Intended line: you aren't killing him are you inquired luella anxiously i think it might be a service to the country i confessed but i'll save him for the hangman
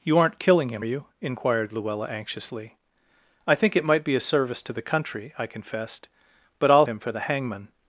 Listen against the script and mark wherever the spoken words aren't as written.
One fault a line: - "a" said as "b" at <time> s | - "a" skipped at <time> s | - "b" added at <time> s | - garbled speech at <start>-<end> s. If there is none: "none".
- "are" skipped at 0.8 s
- "save" skipped at 6.9 s